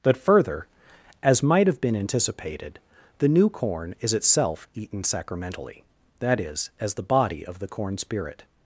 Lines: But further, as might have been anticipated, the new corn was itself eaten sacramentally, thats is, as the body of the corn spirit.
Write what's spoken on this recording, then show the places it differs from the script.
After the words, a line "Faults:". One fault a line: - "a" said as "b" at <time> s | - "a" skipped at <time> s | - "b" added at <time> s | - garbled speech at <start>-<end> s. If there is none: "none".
But further, as might have been anticipated, the new corn is itself eaten sacramentally, that is, as the body of the corn spirit.
Faults:
- "was" said as "is" at 4.0 s
- "thats" said as "that" at 6.2 s